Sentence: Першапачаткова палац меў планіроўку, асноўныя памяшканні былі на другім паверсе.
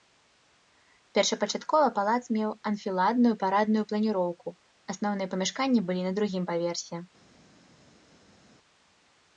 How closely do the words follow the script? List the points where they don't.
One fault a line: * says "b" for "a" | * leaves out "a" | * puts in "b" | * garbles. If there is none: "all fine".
* puts in "анфіладную парадную"